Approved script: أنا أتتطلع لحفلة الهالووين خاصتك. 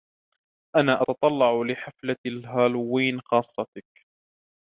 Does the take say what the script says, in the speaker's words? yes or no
yes